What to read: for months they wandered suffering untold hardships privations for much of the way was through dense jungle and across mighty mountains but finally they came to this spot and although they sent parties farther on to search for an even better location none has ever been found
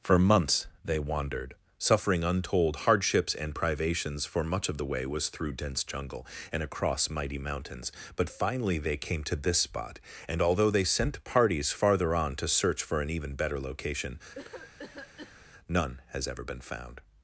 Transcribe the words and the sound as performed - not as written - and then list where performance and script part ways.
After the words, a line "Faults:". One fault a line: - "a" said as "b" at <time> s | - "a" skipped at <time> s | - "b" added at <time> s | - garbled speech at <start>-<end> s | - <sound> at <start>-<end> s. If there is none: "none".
for months they wandered suffering untold hardships and privations for much of the way was through dense jungle and across mighty mountains but finally they came to this spot and although they sent parties farther on to search for an even better location none has ever been found
Faults:
- "and" added at 3.4 s
- cough at 14.3-15.4 s